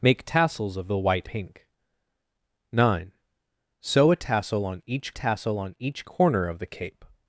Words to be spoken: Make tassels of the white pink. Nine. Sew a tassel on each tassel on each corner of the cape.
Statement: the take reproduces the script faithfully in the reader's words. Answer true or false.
true